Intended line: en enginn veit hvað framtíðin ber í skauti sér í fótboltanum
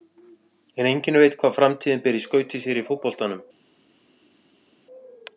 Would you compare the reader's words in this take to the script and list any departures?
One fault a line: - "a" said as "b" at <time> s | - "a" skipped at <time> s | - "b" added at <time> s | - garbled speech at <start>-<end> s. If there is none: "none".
none